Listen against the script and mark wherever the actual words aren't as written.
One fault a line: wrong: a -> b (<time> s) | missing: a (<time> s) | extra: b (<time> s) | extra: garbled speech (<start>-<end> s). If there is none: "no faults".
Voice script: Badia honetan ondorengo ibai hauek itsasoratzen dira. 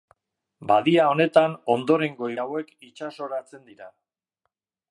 missing: ibai (2.3 s)